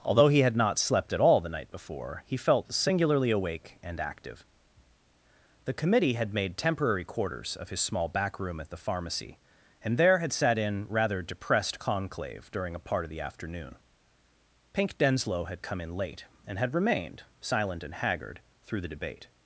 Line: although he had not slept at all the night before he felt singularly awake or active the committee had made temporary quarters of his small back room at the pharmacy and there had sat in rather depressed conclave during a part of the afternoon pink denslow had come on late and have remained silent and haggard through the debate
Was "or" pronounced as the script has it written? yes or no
no